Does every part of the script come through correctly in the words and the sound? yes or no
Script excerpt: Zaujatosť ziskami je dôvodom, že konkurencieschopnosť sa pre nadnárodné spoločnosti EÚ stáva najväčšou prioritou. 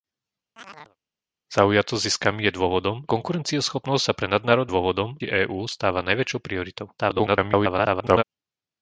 no